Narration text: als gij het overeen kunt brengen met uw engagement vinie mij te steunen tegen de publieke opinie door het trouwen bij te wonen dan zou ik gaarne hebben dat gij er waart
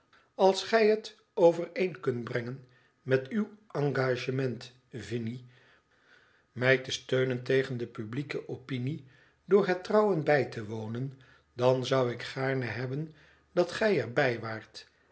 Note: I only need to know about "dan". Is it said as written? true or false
true